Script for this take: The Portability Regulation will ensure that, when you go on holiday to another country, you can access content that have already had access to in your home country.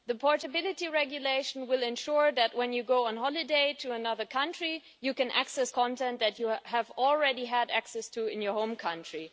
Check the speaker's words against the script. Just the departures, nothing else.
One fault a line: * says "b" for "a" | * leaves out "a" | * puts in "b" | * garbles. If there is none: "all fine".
* puts in "you"